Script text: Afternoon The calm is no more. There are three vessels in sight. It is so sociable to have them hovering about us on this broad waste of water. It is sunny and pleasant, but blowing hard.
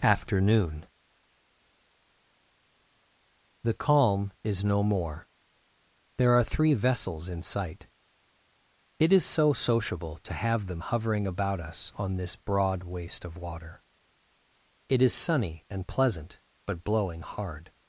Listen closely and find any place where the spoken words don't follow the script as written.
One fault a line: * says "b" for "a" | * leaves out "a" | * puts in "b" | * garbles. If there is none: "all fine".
all fine